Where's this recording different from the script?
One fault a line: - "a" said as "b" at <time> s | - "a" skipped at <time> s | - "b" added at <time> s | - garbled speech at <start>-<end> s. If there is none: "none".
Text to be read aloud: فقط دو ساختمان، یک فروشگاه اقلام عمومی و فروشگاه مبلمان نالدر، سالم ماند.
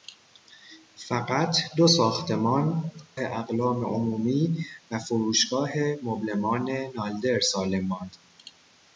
- "یک فروشگاه" skipped at 2.9 s